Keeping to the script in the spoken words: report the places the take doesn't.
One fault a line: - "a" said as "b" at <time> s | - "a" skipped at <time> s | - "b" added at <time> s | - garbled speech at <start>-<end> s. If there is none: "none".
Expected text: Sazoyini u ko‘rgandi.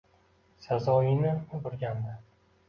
none